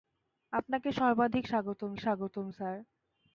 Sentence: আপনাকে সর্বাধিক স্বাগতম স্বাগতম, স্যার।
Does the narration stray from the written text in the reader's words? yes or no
no